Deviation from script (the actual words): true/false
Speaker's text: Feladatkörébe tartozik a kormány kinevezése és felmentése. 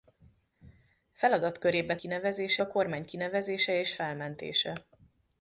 true